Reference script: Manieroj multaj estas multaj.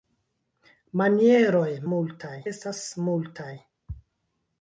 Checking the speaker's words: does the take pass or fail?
pass